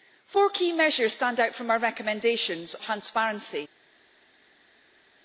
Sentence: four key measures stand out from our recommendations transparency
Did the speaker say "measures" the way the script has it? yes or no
yes